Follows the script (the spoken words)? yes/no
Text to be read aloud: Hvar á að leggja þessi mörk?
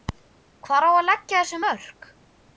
yes